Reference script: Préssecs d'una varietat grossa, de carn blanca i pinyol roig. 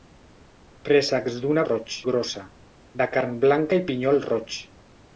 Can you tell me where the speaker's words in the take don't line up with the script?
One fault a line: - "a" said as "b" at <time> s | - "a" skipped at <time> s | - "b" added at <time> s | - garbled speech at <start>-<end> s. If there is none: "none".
- "varietat" said as "roig" at 1.6 s